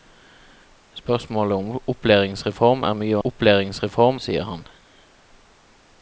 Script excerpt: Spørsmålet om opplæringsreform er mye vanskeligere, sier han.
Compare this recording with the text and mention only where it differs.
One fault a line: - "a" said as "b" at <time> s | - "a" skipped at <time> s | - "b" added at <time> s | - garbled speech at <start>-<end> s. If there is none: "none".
- "vanskeligere" said as "opplæringsreform" at 3.2 s